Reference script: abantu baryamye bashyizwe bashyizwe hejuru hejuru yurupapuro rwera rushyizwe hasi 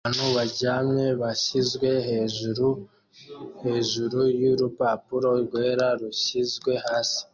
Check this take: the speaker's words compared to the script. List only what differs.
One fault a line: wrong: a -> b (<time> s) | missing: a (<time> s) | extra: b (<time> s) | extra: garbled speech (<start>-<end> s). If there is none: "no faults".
missing: bashyizwe (1.9 s)